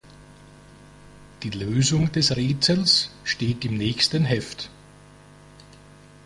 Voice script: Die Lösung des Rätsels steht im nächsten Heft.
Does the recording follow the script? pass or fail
pass